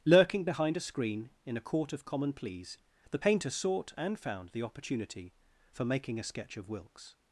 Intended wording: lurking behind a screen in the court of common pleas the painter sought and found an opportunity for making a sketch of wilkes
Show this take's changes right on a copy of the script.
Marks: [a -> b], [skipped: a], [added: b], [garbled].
lurking behind a screen in [the -> a] court of common pleas the painter sought and found [an -> the] opportunity for making a sketch of wilkes